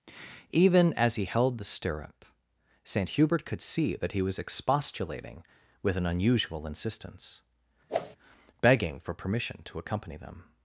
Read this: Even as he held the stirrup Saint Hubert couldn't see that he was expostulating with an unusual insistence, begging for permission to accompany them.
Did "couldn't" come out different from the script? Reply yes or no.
yes